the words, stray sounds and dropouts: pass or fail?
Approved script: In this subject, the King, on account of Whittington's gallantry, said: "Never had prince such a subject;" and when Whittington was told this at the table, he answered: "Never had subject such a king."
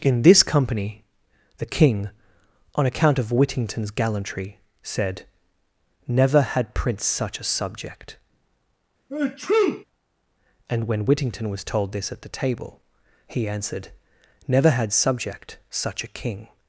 fail